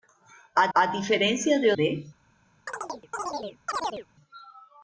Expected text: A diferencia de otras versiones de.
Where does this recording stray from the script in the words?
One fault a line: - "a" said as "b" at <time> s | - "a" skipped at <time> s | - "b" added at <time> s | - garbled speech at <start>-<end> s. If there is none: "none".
- "a" added at 0.7 s
- "otras versiones" skipped at 1.7 s